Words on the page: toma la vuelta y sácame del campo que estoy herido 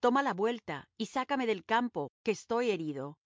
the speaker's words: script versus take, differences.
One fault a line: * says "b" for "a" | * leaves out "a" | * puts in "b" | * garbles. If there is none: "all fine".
all fine